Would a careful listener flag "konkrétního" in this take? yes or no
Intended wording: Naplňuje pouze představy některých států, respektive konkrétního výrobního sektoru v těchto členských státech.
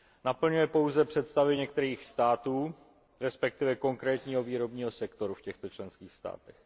no